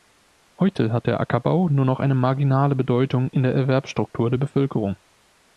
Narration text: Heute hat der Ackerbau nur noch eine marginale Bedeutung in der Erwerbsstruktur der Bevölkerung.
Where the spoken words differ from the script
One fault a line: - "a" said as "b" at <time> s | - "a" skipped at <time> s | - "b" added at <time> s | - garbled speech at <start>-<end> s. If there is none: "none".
none